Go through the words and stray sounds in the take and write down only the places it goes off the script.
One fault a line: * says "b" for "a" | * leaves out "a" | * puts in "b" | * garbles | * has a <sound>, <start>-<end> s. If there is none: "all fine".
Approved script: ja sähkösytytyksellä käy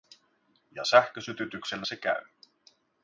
* puts in "se"